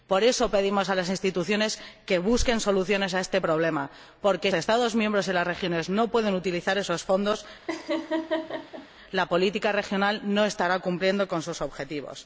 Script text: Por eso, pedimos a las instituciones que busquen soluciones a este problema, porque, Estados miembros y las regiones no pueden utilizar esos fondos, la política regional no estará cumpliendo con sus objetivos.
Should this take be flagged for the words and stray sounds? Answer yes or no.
yes